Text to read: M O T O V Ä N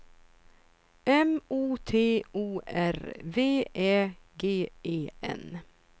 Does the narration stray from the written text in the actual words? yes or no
yes